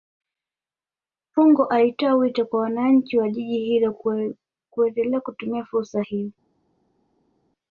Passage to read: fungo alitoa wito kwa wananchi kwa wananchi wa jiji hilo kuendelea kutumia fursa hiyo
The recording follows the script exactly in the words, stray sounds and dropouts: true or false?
false